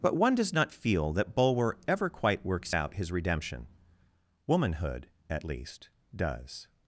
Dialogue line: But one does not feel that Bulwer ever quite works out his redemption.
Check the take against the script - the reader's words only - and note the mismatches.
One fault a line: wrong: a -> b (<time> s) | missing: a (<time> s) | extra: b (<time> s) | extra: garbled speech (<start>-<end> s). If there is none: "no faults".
extra: Womanhood at least does (4.5 s)